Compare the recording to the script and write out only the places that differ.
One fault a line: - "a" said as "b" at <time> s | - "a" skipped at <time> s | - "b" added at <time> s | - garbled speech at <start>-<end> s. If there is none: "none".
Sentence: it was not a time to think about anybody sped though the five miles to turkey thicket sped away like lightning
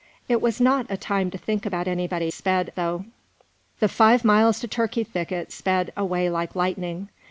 none